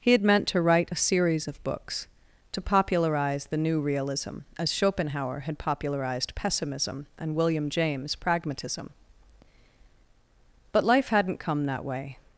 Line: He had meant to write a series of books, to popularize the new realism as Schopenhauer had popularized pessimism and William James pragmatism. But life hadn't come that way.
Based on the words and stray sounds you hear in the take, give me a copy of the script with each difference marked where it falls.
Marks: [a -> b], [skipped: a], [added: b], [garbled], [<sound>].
He had meant to write a series of books, to popularize the new realism as Schopenhauer had popularized pessimism and William James pragmatism. But life hadn't come that way.